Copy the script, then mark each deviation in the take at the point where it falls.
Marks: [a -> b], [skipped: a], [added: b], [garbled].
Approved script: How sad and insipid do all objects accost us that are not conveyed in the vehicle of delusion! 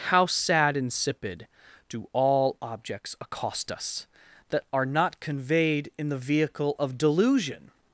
How sad [skipped: and] insipid do all objects accost us that are not conveyed in the vehicle of delusion!